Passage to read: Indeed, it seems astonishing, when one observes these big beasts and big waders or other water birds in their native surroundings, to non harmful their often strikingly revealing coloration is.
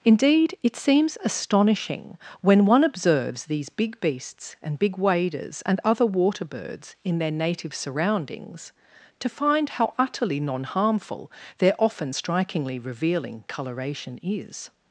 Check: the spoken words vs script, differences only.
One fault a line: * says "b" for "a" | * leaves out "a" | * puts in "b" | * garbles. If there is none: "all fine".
* says "and" for "or"
* puts in "find how utterly"